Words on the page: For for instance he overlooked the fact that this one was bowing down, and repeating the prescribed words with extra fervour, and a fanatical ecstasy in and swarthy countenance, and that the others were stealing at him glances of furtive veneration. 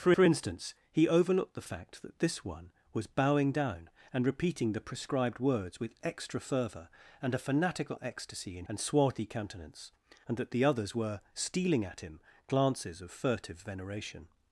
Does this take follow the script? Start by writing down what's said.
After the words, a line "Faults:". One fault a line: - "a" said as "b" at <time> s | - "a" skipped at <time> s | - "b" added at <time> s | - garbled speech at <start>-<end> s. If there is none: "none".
For for instance he overlooked the fact that this one was bowing down, and repeating the prescribed words with extra fervour, and a fanatical ecstasy in and swarthy countenance, and that the others were stealing at him glances of furtive veneration.
Faults:
none